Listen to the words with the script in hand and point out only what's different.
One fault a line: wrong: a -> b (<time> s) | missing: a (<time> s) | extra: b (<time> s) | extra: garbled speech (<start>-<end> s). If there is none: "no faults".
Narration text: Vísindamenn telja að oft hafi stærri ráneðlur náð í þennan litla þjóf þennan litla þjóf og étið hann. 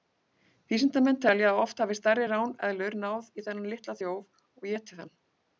missing: þennan litla þjóf (4.3 s)